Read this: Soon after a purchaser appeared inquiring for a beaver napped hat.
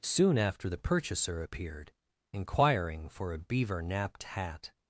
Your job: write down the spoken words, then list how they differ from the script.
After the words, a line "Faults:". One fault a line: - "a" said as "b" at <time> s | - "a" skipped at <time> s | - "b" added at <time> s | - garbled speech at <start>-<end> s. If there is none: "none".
Soon after the purchaser appeared inquiring for a beaver napped hat.
Faults:
- "a" said as "the" at 0.7 s